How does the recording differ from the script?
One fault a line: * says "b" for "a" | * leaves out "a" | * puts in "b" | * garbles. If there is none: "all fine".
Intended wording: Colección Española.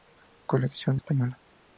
all fine